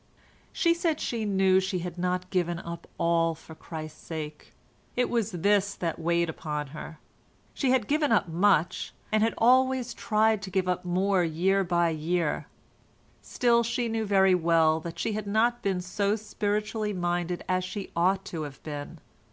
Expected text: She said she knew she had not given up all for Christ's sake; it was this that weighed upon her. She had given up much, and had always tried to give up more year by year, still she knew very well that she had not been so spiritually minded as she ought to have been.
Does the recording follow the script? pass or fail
pass